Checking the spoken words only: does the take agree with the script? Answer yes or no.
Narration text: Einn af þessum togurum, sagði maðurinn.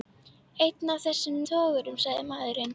yes